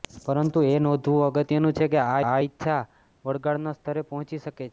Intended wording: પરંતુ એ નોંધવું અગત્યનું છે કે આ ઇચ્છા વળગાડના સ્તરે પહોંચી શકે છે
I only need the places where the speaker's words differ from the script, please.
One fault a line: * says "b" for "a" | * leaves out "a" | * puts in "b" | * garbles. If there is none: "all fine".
* puts in "આ"